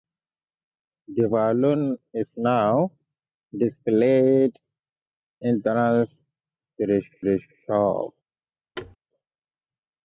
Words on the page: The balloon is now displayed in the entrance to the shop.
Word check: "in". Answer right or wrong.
wrong